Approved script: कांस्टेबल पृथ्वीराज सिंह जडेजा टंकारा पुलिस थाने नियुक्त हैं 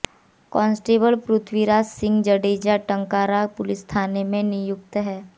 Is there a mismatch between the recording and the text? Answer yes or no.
yes